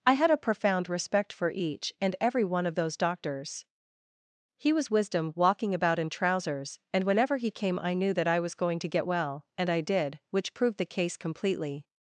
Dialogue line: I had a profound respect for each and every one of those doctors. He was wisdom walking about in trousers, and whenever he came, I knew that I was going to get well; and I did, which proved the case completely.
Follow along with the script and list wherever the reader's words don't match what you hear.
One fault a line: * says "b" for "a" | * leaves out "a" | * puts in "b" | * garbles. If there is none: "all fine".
all fine